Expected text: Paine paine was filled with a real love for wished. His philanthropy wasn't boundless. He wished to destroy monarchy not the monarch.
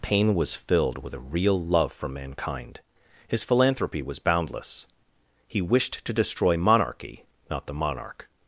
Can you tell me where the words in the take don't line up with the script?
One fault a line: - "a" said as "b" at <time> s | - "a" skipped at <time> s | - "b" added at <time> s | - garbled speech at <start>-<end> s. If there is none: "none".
- "paine" skipped at 0.3 s
- "wished" said as "mankind" at 2.1 s
- "wasn't" said as "was" at 4.0 s